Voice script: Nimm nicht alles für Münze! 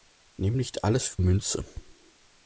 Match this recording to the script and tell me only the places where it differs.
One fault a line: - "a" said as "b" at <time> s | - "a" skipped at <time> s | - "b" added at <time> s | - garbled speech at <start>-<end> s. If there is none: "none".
none